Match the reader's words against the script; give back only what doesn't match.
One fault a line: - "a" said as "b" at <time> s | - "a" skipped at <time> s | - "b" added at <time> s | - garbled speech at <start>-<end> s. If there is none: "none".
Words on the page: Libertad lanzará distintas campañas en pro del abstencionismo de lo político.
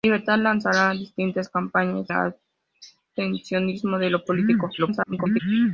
- "en pro del" skipped at 2.1 s
- garbled speech at 4.8-5.4 s